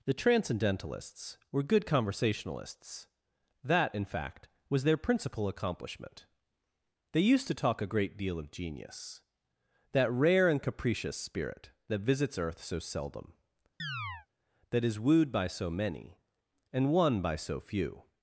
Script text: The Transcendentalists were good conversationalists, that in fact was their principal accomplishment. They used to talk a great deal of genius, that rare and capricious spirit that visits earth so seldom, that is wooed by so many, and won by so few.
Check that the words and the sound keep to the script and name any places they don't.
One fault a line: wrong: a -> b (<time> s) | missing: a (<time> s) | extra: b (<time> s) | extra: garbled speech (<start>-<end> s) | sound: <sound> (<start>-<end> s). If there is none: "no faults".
sound: chirp (13.8-14.3 s)